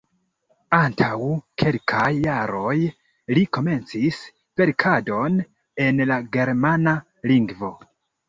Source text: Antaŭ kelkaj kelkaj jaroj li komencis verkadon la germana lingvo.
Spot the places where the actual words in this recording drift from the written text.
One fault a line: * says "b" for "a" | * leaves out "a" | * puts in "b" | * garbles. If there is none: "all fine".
* leaves out "kelkaj"
* puts in "en"